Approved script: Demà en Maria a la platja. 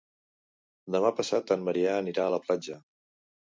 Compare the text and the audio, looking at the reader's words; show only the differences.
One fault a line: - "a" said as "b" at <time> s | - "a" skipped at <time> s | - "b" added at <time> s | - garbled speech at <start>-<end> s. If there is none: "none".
- "passat" added at 1.2 s
- "anirà" added at 2.0 s